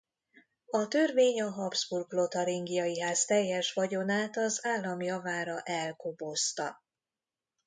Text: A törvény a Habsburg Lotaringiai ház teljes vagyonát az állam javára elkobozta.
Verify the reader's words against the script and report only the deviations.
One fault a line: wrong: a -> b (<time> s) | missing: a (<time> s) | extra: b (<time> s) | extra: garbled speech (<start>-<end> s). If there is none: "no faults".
no faults